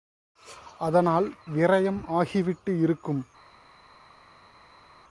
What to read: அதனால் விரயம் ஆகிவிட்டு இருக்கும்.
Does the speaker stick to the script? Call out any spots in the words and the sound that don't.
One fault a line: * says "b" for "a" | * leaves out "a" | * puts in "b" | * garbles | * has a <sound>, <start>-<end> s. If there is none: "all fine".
all fine